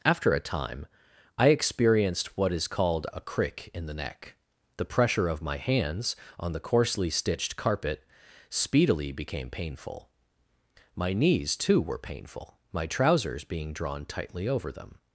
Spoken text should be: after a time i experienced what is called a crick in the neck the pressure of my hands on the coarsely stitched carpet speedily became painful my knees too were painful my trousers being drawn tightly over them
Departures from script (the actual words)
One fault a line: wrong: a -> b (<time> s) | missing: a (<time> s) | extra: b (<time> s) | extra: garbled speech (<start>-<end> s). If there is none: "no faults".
no faults